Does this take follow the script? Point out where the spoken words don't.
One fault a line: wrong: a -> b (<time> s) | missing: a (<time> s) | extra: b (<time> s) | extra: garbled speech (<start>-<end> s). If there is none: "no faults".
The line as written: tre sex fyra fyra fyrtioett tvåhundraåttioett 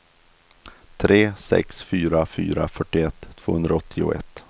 no faults